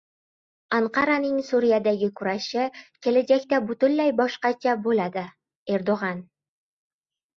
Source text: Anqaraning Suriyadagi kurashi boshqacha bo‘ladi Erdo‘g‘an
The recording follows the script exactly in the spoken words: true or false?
false